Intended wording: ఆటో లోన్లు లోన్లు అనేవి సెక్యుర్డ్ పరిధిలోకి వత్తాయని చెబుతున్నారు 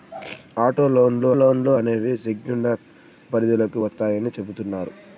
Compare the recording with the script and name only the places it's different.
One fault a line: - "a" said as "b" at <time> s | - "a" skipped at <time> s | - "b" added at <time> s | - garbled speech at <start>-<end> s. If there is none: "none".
none